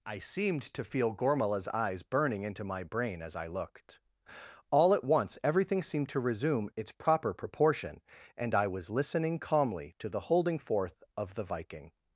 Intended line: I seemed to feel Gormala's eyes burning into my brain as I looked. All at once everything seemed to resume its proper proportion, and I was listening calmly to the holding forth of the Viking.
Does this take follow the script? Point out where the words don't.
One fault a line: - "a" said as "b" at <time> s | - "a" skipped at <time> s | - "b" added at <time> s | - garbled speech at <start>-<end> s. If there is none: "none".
none